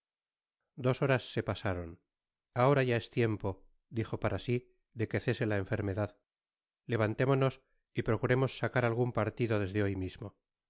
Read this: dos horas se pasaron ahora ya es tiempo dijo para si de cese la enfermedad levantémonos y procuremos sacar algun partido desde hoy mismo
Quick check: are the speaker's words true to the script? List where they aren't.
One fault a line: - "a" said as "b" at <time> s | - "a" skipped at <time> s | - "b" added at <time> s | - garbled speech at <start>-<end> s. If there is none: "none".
- "que" added at 5.1 s